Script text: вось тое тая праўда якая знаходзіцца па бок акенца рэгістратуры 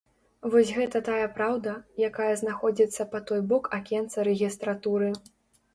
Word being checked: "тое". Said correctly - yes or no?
no